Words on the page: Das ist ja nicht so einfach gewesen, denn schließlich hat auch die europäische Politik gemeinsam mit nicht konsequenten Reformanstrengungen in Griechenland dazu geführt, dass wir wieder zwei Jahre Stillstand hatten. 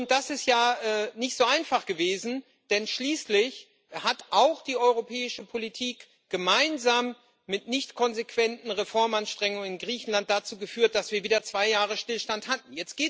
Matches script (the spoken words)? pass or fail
pass